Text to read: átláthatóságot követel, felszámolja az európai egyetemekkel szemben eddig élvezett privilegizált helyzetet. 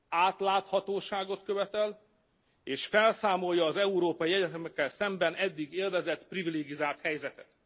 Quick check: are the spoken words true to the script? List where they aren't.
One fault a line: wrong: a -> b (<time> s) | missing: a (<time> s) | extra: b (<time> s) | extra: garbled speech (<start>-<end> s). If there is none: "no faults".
extra: és (2.6 s)